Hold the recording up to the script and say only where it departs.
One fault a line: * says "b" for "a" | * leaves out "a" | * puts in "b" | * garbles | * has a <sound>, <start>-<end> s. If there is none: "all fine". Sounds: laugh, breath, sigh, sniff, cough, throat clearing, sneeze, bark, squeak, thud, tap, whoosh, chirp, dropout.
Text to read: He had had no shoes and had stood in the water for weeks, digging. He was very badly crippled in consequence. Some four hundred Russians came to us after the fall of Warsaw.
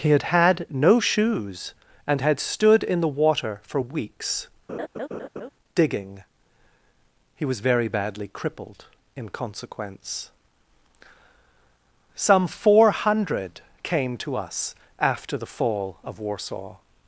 * has a laugh, 4.7-5.5 s
* leaves out "Russians"